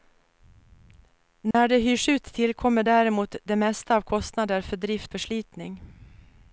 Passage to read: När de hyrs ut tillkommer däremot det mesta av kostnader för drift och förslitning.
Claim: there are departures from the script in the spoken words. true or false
true